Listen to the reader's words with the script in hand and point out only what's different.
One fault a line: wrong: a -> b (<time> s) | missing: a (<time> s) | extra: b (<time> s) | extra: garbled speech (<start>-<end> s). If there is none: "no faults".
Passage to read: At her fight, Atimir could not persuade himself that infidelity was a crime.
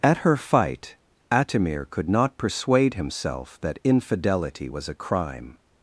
no faults